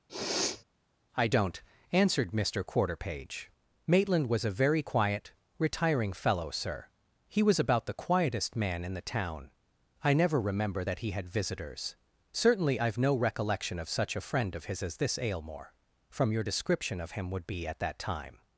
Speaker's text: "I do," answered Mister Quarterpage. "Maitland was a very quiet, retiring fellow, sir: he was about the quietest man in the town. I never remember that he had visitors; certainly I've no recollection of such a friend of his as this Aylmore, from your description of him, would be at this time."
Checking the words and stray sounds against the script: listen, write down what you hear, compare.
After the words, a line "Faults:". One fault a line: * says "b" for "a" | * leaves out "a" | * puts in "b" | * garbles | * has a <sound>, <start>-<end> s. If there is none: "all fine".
"I don't," answered Mister Quarterpage. "Maitland was a very quiet, retiring fellow, sir: he was about the quietest man in the town. I never remember that he had visitors; certainly I've no recollection of such a friend of his as this Aylmore, from your description of him, would be at that time."
Faults:
* has a sniff, 0.1-0.6 s
* says "don't" for "do"
* says "that" for "this"